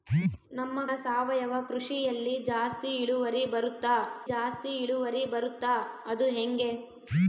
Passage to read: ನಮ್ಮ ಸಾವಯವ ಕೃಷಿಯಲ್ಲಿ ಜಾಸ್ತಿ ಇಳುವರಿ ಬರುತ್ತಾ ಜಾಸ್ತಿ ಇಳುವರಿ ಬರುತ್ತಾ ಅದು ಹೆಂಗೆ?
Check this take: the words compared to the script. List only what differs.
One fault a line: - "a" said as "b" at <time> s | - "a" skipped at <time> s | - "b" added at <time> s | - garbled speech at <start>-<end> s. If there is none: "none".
none